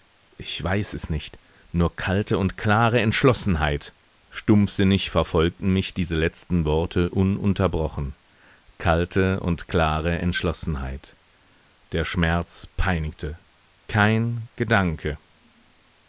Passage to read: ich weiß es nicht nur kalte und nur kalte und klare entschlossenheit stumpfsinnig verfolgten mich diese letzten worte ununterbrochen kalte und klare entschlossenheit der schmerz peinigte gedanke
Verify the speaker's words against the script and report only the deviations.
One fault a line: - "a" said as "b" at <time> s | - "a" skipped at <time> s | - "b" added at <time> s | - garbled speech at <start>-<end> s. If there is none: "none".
- "nur kalte und" skipped at 2.6 s
- "kein" added at 13.9 s